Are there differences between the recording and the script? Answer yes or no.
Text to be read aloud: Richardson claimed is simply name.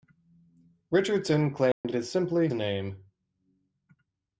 no